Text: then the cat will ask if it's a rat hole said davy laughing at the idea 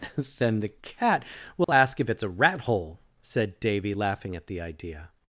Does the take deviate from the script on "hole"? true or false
false